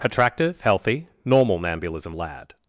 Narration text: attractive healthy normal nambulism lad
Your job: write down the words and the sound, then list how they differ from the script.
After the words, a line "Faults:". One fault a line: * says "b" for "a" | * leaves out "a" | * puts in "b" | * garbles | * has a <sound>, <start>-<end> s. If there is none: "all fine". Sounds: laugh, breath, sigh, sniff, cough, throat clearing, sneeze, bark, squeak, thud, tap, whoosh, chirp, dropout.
attractive healthy normal nambulism lad
Faults:
all fine